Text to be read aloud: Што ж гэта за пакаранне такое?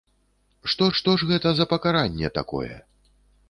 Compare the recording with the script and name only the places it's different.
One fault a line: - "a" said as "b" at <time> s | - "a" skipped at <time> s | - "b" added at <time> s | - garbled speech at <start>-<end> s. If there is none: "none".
- "што" added at 1.0 s